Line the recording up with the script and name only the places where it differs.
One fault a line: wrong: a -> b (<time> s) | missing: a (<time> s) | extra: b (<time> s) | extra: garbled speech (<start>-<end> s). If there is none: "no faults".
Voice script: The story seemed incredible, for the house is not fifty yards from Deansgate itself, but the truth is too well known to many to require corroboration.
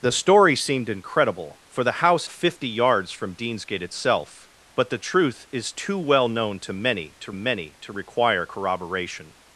missing: is not (2.3 s)
extra: many to (7.3 s)